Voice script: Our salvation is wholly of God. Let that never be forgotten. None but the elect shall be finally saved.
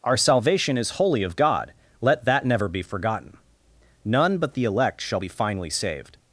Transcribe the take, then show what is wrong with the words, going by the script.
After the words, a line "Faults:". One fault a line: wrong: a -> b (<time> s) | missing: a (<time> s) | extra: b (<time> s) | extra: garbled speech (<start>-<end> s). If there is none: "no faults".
Our salvation is wholly of God. Let that never be forgotten. None but the elect shall be finally saved.
Faults:
no faults